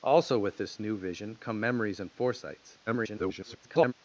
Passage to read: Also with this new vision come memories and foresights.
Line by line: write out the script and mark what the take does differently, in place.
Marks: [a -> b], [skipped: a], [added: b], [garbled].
Also with this new vision come memories and foresights. [garbled]